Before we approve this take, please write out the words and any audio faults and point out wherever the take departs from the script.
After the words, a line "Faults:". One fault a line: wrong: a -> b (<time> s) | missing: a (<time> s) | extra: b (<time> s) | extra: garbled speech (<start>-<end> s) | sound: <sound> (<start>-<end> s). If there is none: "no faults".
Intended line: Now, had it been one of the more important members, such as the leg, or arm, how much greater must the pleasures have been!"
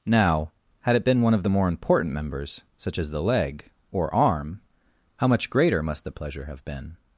Now, had it been one of the more important members, such as the leg, or arm, how much greater must the pleasure have been!"
Faults:
wrong: pleasures -> pleasure (6.1 s)